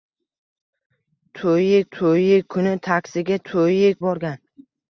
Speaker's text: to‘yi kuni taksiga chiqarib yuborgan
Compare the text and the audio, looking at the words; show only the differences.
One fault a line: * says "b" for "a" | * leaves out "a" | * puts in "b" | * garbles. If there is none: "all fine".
* puts in "to‘yi"
* says "to‘yi" for "chiqarib"